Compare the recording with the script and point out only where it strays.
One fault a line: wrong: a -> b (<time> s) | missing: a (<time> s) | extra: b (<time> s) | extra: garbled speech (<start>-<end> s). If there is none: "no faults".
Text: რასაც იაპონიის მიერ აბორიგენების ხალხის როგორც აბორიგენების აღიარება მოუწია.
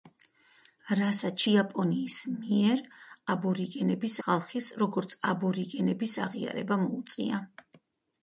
no faults